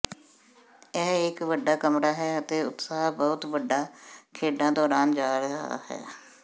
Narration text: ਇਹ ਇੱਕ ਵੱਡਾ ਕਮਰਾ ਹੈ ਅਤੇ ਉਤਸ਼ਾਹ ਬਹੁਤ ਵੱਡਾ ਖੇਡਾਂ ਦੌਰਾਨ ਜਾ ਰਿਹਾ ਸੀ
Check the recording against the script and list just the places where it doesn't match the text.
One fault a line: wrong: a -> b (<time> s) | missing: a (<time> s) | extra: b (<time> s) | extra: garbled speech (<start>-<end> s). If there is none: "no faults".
wrong: ਸੀ -> ਹੈ (5.9 s)